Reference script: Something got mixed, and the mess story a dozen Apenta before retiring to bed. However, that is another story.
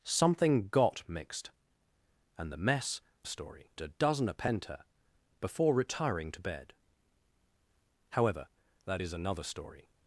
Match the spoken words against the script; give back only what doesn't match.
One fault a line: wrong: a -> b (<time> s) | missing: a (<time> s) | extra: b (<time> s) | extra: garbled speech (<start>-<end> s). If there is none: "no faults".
no faults